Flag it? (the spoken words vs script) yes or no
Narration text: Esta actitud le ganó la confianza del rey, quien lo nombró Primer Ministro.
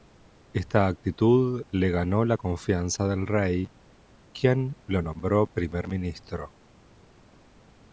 no